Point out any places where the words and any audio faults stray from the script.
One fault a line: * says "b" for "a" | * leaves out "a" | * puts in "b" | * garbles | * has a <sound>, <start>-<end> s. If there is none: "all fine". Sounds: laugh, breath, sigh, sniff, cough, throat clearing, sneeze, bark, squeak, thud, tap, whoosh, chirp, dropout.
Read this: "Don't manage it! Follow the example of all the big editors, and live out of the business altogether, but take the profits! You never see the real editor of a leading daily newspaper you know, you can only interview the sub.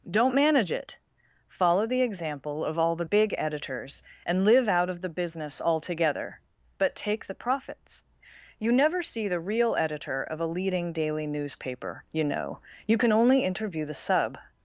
all fine